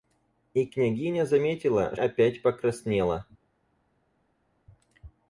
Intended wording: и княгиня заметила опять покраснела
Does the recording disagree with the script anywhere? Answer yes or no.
no